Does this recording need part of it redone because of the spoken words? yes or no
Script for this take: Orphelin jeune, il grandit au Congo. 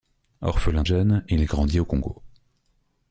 no